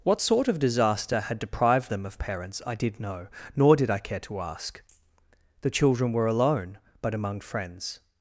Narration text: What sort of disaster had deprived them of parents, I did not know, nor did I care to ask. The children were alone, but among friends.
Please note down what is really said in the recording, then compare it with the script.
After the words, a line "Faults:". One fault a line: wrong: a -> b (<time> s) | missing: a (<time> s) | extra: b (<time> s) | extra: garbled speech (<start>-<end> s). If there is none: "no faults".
What sort of disaster had deprived them of parents, I did know, nor did I care to ask. The children were alone, but among friends.
Faults:
missing: not (3.0 s)